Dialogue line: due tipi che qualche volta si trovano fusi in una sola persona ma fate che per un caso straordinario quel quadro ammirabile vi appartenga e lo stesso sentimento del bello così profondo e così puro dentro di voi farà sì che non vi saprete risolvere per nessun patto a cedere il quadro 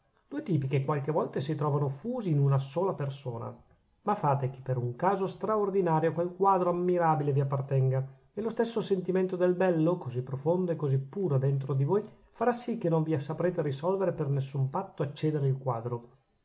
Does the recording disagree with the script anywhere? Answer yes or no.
no